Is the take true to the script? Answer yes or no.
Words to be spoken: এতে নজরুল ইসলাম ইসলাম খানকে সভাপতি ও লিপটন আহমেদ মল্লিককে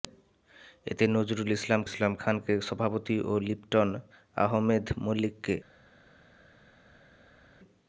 yes